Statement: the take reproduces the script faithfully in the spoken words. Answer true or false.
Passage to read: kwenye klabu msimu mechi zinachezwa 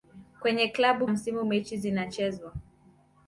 true